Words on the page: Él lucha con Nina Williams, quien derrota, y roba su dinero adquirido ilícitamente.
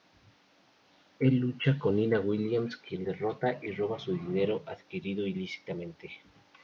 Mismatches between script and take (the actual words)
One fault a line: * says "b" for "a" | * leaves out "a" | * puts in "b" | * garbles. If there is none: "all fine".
all fine